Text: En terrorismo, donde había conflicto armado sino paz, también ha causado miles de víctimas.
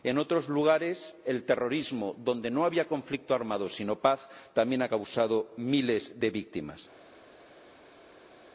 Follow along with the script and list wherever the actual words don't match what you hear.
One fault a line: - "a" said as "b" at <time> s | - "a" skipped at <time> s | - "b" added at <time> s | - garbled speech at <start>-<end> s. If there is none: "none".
- "otros lugares el" added at 0.2 s
- "no" added at 2.5 s